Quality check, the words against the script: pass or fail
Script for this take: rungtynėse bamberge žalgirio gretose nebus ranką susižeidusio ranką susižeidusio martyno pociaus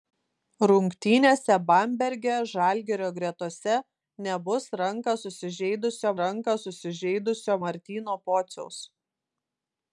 pass